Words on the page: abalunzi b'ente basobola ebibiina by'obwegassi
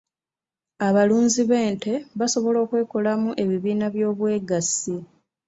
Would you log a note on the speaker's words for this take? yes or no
yes